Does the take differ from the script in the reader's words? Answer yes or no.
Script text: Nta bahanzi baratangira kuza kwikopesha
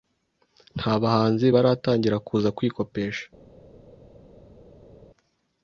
no